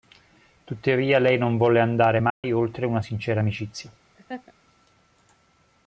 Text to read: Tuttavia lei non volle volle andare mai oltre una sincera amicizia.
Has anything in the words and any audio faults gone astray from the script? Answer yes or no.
yes